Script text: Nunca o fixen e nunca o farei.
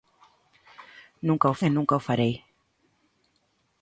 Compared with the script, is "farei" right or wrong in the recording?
right